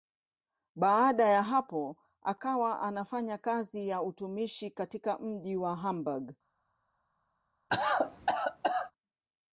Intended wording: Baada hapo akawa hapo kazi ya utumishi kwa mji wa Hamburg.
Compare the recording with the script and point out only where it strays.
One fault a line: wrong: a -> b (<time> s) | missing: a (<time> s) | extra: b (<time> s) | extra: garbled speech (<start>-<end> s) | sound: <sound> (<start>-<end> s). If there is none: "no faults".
extra: ya (1.3 s)
wrong: hapo -> anafanya (2.8 s)
wrong: kwa -> katika (4.7 s)
sound: cough (7.7-8.9 s)